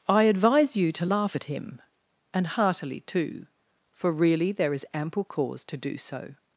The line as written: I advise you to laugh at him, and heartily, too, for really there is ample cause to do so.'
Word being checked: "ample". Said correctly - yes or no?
yes